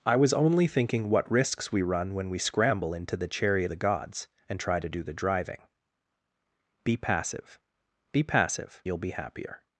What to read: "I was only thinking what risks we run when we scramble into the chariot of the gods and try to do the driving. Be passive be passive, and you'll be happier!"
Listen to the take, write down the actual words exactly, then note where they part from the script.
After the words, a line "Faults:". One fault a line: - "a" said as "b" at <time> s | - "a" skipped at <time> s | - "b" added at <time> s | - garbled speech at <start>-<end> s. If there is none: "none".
"I was only thinking what risks we run when we scramble into the chariot the gods and try to do the driving. Be passive be passive, you'll be happier!"
Faults:
- "of" skipped at 3.7 s
- "and" skipped at 8.8 s